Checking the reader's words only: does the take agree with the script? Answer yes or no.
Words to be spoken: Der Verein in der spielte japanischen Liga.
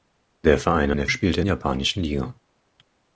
yes